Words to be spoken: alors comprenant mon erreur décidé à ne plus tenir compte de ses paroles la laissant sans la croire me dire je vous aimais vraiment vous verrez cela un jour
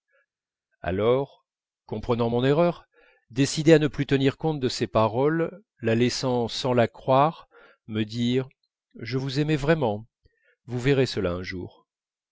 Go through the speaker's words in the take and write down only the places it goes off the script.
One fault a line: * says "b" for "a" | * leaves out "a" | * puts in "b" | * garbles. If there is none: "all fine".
all fine